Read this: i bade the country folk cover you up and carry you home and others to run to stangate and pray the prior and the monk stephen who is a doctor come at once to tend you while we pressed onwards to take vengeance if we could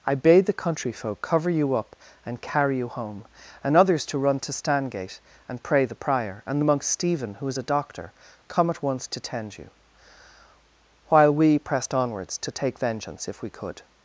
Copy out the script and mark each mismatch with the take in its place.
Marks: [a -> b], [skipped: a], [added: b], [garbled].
i bade the country folk cover you up and carry you home and others to run to stangate and pray the prior and the monk stephen who is a doctor come at once to tend you while we pressed onwards to take vengeance if we could